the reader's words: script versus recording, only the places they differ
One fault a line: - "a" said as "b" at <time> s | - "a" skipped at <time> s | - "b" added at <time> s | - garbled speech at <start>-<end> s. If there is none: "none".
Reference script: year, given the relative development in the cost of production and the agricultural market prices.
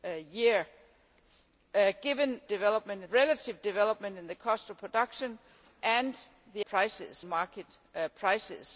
- "the" said as "development" at 2.5 s
- "agricultural" said as "prices" at 6.7 s